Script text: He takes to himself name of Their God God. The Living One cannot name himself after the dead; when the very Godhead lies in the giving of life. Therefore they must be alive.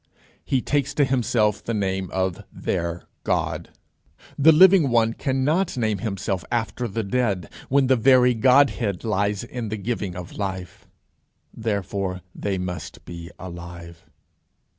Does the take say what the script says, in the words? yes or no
no